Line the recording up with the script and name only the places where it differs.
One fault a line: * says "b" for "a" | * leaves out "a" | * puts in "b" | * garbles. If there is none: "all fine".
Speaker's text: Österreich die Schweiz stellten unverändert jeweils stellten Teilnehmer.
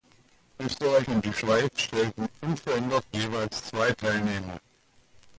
* puts in "und"
* says "zwei" for "stellten"